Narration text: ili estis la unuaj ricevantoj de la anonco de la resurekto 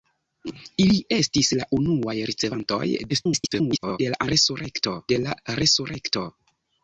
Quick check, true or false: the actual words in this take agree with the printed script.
false